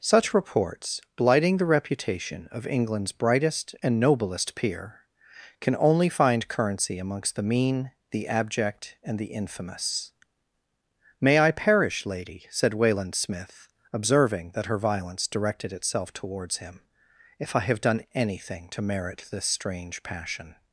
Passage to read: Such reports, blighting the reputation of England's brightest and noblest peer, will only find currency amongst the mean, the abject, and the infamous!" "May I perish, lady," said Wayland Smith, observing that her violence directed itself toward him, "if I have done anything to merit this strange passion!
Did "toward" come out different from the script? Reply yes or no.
yes